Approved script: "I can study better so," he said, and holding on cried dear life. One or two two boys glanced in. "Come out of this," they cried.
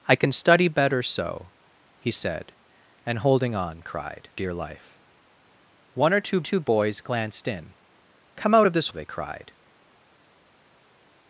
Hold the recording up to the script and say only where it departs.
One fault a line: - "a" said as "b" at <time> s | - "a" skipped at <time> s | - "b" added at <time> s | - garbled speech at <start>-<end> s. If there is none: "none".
none